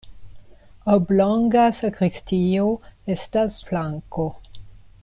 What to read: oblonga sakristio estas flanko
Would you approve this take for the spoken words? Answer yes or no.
yes